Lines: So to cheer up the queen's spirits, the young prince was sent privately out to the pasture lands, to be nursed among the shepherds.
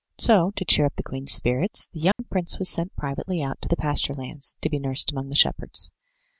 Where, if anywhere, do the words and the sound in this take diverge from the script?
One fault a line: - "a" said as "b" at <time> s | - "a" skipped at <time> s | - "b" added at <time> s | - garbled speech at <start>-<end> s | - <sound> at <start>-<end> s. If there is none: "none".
- dropout at 2.1-2.2 s